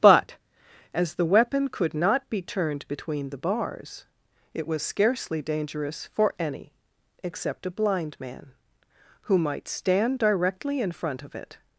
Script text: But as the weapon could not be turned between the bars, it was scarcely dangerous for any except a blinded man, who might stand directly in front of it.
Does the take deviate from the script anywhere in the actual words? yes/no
yes